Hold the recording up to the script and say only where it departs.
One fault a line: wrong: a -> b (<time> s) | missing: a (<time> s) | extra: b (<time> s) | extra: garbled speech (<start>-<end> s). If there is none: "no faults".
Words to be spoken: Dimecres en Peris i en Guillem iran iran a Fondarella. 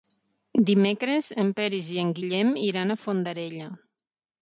missing: iran (3.0 s)